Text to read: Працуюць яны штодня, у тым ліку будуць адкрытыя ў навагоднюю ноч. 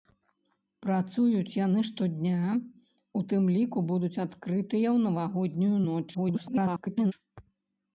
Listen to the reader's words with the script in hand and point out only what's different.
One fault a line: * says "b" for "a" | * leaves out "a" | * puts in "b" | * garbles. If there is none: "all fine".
* garbles